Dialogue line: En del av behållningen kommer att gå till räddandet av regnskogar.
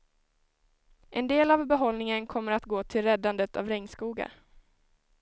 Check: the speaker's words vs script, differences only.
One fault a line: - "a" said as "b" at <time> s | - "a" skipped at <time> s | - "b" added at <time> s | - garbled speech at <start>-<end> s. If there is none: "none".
none